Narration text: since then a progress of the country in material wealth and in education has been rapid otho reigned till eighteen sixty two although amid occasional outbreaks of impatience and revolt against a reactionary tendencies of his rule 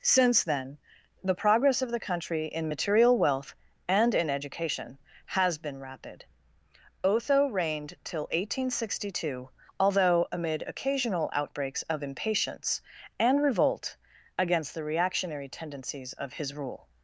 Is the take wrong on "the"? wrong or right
right